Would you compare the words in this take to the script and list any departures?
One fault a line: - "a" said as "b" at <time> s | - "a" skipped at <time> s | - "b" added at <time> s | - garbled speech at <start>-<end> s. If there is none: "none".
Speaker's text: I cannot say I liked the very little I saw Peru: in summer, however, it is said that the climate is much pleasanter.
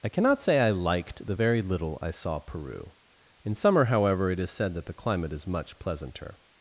none